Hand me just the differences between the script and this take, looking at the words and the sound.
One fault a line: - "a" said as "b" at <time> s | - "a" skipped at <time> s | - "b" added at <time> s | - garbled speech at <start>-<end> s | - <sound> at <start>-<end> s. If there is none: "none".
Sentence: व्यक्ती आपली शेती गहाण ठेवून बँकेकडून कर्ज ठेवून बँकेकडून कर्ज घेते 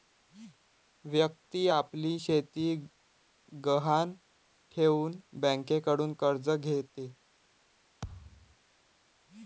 - "ठेवून बँकेकडून कर्ज" skipped at 6.5 s
- thud at 8.0-8.6 s